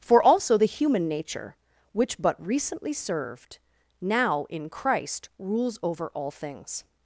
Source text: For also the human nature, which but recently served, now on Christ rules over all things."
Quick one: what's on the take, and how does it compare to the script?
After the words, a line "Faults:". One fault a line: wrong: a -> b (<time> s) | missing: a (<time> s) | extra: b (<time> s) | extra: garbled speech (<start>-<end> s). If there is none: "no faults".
For also the human nature, which but recently served, now in Christ rules over all things."
Faults:
wrong: on -> in (4.5 s)